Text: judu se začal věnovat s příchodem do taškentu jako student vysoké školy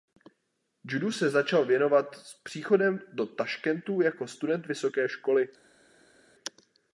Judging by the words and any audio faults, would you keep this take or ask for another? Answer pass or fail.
pass